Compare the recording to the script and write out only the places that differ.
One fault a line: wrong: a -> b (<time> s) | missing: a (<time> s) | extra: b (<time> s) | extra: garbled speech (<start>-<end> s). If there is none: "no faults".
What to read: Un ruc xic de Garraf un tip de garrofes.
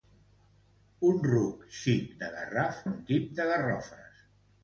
no faults